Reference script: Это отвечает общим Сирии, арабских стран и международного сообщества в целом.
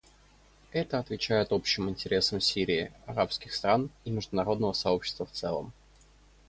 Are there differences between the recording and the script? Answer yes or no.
yes